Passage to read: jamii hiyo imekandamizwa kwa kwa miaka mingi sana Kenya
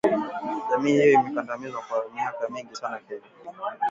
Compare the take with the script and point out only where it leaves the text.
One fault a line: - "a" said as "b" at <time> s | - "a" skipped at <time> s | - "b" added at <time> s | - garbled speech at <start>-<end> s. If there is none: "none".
- "kwa" skipped at 2.0 s